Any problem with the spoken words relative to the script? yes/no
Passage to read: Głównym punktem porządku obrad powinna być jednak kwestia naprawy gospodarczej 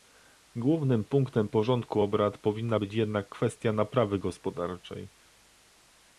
no